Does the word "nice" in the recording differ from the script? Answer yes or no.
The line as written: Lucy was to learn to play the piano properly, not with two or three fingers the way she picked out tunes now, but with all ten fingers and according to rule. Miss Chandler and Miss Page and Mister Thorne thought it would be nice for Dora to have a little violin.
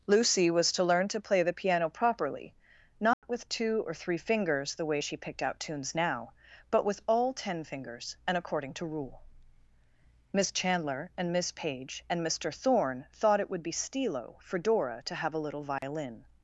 yes